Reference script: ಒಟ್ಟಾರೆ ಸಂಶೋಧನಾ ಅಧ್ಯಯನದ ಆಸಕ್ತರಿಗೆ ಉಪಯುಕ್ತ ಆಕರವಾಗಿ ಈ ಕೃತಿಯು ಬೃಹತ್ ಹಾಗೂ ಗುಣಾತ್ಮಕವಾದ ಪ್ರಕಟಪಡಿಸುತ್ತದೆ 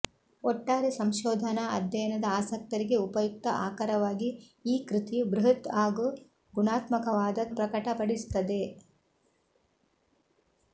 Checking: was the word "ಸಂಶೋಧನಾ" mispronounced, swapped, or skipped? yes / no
no